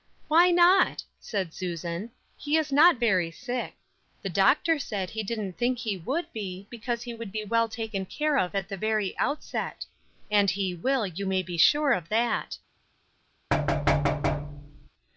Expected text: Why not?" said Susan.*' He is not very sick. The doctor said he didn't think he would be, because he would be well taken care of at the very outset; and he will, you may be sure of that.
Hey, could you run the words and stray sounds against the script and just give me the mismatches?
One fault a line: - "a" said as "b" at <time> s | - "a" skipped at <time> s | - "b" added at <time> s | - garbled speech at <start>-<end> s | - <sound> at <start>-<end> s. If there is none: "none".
- thud at 13.5-14.9 s